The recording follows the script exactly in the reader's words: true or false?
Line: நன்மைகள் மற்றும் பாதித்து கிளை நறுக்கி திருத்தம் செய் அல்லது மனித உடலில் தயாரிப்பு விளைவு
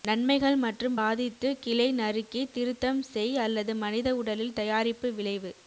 true